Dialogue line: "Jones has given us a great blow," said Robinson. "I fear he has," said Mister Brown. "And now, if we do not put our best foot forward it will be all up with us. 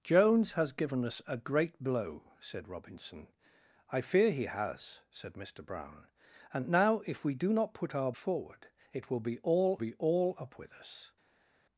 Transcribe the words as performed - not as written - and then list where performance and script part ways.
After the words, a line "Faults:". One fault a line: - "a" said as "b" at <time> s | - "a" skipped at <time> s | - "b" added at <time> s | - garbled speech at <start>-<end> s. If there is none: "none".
"Jones has given us a great blow," said Robinson. "I fear he has," said Mister Brown. "And now, if we do not put our forward it will be all be all up with us.
Faults:
- "best foot" skipped at 8.1 s
- "be all" added at 9.7 s